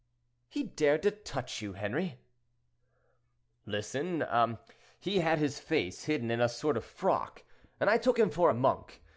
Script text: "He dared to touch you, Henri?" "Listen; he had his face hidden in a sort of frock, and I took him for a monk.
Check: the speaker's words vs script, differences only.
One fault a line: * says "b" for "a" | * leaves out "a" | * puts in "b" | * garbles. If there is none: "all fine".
all fine